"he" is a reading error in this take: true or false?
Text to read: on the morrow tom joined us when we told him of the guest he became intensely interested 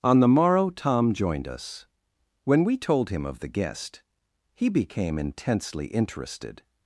false